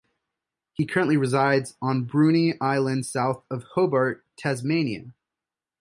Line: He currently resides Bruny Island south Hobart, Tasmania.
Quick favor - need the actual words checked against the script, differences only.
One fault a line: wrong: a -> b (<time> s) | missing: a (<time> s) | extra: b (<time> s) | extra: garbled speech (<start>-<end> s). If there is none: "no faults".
extra: on (1.8 s)
extra: of (3.5 s)